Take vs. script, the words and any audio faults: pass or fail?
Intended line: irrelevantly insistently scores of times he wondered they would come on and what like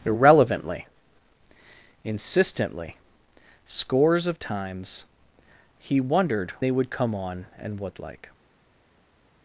pass